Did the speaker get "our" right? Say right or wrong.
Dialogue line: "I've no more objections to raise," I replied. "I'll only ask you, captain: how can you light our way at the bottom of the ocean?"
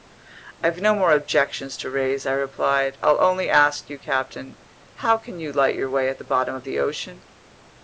wrong